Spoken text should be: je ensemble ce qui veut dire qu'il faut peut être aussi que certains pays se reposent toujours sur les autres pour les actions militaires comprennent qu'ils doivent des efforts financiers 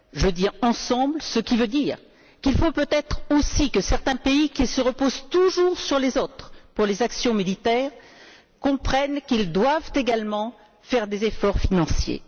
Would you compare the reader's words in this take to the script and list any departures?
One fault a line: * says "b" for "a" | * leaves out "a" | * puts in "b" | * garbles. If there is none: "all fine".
* puts in "dis"
* puts in "qui"
* puts in "également faire"